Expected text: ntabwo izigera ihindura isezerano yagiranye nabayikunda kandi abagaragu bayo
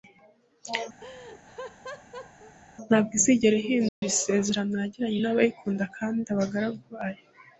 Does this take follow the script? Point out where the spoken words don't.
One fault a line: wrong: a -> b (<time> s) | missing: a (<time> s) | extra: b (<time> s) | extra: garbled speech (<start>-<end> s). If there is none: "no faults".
no faults